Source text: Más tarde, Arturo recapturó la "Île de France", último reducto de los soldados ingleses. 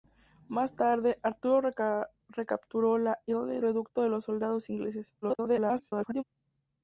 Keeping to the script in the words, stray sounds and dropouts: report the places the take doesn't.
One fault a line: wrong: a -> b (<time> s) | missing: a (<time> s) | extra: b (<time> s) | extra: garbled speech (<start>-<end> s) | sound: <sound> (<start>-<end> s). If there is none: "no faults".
missing: de France último (3.6 s)
extra: garbled speech (5.2-6.2 s)